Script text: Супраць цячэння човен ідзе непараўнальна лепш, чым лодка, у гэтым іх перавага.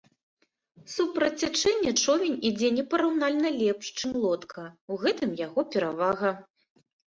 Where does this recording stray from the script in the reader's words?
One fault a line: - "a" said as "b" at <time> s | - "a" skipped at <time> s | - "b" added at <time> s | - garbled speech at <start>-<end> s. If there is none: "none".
- "іх" said as "яго" at 5.4 s